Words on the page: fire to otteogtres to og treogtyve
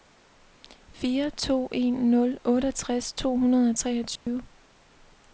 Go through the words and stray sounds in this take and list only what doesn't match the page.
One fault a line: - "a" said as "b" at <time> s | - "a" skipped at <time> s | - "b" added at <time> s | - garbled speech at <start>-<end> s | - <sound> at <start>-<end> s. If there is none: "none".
- "en nul" added at 1.7 s
- "hundrede" added at 3.4 s
- dropout at 4.2-4.3 s